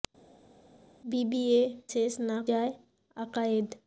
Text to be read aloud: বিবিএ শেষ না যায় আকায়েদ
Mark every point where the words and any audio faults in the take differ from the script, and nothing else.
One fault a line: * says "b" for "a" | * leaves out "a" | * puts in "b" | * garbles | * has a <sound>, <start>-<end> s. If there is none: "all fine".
all fine